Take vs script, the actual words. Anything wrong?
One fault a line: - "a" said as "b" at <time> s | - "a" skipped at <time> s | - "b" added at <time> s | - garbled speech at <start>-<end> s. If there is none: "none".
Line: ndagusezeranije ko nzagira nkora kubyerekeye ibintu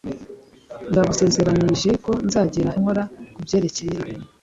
none